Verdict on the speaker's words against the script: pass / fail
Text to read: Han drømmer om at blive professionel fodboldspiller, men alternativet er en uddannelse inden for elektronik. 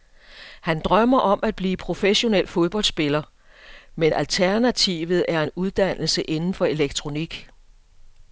pass